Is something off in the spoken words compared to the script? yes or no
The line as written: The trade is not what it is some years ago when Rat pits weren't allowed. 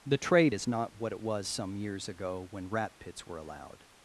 yes